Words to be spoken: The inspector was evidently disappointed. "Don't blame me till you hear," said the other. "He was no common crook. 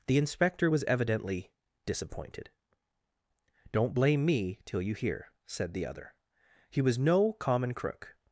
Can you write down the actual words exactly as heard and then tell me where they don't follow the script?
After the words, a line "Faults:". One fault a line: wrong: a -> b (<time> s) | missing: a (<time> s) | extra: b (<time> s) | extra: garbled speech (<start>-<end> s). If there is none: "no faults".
The inspector was evidently disappointed. "Don't blame me till you hear," said the other. "He was no common crook.
Faults:
no faults